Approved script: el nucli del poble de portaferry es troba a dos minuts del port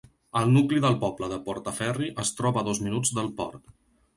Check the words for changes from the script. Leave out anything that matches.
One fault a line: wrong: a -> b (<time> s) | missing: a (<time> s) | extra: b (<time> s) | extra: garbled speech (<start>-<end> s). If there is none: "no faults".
no faults